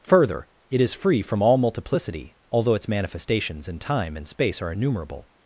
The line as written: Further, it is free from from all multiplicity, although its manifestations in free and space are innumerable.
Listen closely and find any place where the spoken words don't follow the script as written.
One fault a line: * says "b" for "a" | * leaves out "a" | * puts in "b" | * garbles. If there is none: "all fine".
* leaves out "from"
* says "time" for "free"